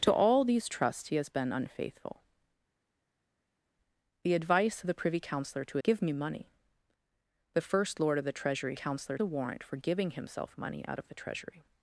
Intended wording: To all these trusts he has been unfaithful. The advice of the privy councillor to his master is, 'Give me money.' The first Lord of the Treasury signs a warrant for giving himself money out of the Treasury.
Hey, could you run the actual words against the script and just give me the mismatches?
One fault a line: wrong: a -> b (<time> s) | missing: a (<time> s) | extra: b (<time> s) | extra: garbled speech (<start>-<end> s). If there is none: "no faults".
missing: his master is (5.8 s)
wrong: signs -> councillor (8.7 s)